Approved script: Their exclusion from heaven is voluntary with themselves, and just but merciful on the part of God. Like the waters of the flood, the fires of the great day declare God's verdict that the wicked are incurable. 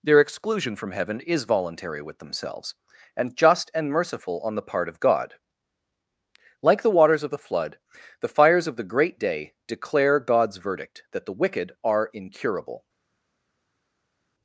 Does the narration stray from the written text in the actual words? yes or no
yes